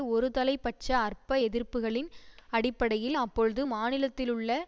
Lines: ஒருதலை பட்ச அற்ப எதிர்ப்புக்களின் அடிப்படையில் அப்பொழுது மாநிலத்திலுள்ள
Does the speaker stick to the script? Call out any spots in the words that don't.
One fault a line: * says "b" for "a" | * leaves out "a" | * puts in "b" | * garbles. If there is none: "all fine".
all fine